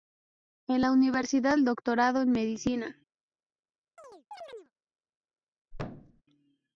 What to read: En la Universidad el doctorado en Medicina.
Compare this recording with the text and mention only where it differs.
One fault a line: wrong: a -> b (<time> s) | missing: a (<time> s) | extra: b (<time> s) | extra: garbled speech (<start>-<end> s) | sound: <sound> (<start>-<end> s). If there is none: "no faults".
sound: chirp (4.0-4.7 s)
sound: thud (5.7-6.2 s)